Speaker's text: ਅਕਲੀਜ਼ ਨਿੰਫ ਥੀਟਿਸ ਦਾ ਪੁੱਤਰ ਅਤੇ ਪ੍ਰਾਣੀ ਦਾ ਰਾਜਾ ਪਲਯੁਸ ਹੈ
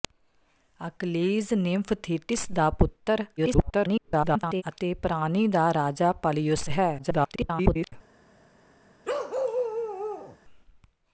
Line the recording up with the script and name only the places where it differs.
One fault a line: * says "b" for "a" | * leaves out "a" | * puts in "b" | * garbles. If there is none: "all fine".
* garbles
* garbles